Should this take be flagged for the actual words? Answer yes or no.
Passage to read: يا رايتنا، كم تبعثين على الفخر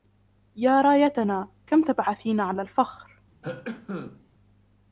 no